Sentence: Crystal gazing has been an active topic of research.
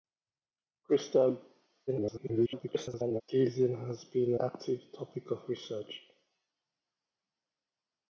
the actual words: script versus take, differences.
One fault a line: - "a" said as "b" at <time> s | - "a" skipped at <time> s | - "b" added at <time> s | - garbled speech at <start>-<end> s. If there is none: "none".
- garbled speech at 1.9-3.2 s
- "an" skipped at 4.4 s